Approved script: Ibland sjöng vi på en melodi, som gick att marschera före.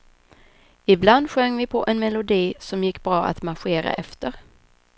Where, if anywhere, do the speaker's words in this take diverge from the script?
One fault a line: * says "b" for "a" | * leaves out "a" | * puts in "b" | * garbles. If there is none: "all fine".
* puts in "bra"
* says "efter" for "före"